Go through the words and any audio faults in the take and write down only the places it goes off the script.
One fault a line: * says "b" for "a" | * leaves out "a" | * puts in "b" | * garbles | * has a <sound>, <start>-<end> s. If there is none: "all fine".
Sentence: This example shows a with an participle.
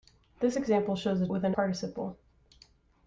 all fine